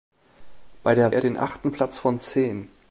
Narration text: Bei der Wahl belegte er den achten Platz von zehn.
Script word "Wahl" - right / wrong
wrong